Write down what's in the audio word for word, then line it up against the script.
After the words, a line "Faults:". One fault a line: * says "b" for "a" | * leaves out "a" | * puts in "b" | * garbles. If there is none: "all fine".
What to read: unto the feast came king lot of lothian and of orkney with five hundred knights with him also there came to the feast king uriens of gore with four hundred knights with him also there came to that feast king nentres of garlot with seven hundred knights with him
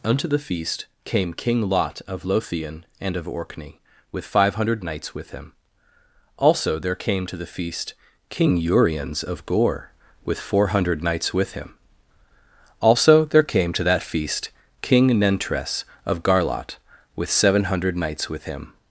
unto the feast came king lot of lothian and of orkney with five hundred knights with him also there came to the feast king uriens of gore with four hundred knights with him also there came to that feast king nentres of garlot with seven hundred knights with him
Faults:
all fine